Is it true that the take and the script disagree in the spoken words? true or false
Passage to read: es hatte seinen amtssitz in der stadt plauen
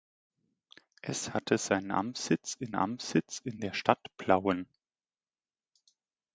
true